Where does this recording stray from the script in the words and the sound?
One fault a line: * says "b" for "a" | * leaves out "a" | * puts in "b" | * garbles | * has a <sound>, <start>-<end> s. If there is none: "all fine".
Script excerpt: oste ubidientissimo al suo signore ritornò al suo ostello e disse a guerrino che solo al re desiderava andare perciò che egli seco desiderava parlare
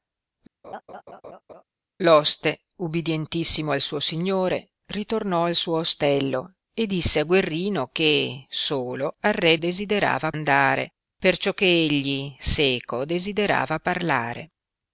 * has a laugh, 0.6-1.6 s